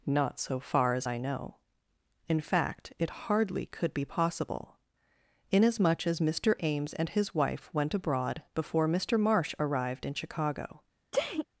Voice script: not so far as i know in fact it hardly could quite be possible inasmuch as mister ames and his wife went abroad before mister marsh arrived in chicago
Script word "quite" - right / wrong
wrong